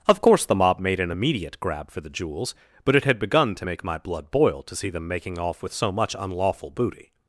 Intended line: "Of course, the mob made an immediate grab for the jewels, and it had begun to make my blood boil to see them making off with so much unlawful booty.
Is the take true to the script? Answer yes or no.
no